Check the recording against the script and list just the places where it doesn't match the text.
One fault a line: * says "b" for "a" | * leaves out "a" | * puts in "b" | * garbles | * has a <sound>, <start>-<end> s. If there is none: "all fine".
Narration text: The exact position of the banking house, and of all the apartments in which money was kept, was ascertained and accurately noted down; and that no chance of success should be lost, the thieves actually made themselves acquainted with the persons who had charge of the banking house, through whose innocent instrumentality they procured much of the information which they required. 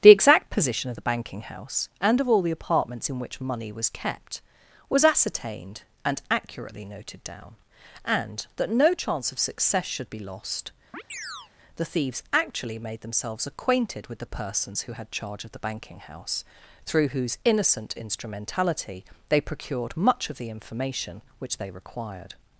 * has a chirp, 10.9-11.5 s